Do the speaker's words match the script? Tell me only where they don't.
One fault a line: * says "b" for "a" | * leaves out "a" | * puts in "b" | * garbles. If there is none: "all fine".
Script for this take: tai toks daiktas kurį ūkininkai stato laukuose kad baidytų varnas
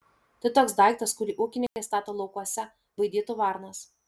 * leaves out "kad"